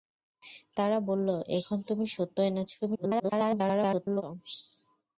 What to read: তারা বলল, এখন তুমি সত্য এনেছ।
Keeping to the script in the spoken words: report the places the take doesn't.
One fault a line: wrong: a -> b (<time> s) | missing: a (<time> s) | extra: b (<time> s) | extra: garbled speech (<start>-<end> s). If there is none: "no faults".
extra: garbled speech (2.8-4.2 s)